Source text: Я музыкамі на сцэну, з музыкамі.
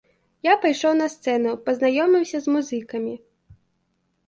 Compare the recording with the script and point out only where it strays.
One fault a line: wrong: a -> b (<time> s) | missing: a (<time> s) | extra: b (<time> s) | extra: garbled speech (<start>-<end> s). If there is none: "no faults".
wrong: музыкамі -> пайшоў (0.6 s)
extra: пазнаёміўся (1.7 s)